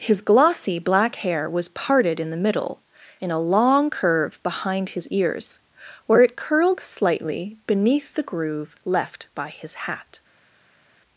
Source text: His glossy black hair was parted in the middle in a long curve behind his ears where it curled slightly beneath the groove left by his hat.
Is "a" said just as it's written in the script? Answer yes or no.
yes